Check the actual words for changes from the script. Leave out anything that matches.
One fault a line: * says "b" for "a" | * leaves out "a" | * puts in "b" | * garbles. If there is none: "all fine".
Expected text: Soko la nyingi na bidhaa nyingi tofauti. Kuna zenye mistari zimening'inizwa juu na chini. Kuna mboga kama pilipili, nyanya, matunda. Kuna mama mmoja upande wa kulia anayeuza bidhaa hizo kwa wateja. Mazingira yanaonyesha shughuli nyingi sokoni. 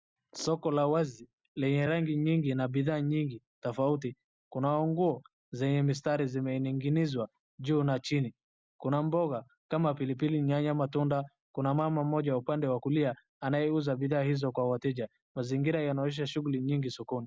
* puts in "wazi lenye rangi"
* puts in "nguo"